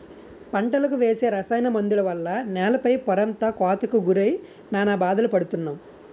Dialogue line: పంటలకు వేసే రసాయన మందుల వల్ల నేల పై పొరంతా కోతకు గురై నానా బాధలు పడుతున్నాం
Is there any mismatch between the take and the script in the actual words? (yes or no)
no